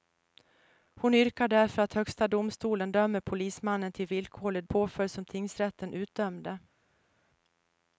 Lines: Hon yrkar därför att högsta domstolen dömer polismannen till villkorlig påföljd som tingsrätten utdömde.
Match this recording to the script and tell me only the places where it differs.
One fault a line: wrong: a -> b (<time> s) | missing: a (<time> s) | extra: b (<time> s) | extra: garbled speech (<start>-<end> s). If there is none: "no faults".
no faults